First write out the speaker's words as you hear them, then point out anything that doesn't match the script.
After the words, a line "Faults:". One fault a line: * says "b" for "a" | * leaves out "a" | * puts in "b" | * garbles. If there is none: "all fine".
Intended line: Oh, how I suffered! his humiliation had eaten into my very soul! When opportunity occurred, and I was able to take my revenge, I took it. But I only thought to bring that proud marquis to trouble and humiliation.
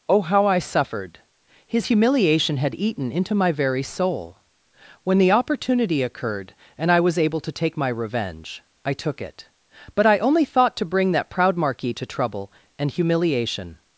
Oh, how I suffered! his humiliation had eaten into my very soul! When the opportunity occurred, and I was able to take my revenge, I took it. But I only thought to bring that proud marquis to trouble and humiliation.
Faults:
* puts in "the"